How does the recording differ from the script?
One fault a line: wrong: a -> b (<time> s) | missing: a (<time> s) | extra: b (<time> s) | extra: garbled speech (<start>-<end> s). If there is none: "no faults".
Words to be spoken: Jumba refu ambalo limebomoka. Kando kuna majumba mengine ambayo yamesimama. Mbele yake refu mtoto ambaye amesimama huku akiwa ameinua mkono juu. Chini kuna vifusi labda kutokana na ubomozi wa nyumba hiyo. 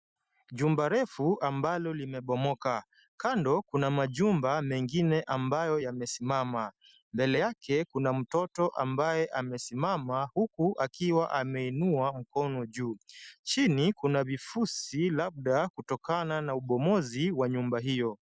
wrong: refu -> kuna (7.9 s)